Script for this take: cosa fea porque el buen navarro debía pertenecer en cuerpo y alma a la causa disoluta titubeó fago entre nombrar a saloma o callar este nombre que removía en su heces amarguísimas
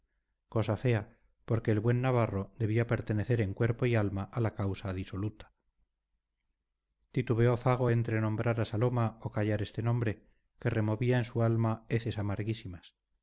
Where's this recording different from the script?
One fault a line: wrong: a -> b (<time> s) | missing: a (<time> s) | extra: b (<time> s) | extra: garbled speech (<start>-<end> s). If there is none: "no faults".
extra: alma (11.4 s)